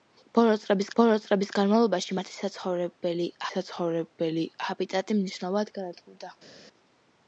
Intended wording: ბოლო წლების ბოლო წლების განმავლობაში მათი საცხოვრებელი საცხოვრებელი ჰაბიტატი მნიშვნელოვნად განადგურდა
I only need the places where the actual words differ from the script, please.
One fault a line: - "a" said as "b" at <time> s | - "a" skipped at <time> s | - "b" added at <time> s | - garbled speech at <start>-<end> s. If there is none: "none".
none